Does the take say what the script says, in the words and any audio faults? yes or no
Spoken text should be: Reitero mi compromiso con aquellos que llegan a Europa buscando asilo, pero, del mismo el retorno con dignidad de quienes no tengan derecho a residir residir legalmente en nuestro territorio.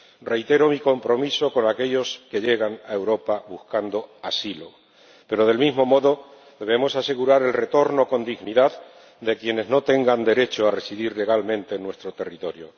no